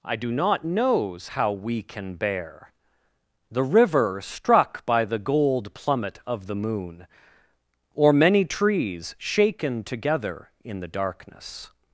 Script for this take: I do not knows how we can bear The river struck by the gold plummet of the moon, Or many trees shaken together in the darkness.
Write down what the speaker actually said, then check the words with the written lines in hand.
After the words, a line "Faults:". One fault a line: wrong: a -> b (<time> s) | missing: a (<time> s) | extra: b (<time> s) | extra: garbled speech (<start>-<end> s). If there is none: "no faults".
I do not knows how we can bear The river struck by the gold plummet of the moon, Or many trees shaken together in the darkness.
Faults:
no faults